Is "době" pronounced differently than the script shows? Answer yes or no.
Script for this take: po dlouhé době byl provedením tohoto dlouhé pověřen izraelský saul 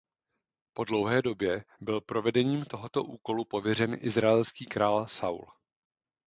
no